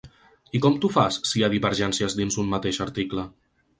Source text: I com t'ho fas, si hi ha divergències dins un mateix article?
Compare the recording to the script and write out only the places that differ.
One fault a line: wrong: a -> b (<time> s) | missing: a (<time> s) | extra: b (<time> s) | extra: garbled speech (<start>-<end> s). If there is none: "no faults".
no faults